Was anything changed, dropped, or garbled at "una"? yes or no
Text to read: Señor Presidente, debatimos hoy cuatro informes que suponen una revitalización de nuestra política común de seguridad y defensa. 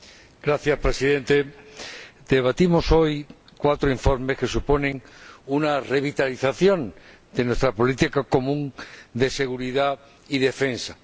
no